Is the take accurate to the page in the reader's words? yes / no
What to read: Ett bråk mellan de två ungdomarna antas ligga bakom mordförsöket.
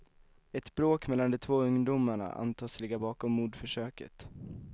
yes